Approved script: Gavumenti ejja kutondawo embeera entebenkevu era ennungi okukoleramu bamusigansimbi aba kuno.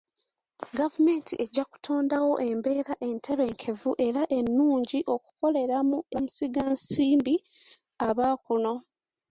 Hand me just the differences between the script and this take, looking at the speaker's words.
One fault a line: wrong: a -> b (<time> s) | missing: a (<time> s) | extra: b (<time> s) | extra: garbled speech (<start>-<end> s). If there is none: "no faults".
no faults